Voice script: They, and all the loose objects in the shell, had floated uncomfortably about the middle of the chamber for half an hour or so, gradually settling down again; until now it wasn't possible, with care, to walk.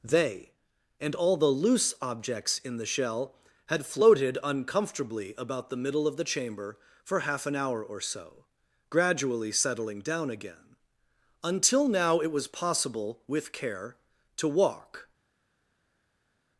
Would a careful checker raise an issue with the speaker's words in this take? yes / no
yes